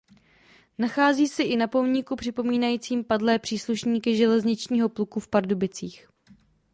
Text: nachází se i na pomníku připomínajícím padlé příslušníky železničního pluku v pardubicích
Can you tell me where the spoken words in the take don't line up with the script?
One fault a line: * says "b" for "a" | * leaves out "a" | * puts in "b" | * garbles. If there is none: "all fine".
all fine